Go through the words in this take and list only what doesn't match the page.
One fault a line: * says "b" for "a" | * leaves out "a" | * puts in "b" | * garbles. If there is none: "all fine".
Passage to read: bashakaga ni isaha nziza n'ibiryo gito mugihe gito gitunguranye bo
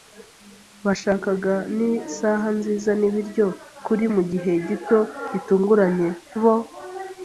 * says "kuri" for "gito"